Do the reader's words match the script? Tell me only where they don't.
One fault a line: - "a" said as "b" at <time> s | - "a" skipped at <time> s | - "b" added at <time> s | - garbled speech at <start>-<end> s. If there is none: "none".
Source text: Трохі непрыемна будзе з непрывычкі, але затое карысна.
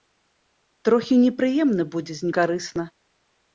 - "непрывычкі але затое" skipped at 2.3 s